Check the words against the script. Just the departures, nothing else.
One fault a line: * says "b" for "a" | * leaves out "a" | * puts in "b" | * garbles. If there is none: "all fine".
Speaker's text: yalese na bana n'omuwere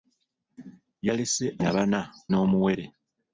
all fine